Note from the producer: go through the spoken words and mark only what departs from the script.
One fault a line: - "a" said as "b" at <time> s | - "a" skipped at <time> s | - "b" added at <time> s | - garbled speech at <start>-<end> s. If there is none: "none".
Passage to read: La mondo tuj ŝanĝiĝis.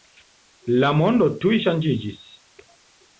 none